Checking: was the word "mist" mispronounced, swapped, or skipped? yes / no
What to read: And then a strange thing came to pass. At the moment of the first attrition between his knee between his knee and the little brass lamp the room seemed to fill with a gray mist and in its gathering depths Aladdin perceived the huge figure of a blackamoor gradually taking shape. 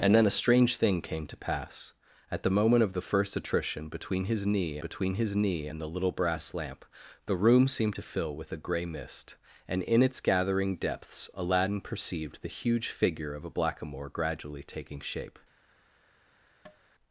no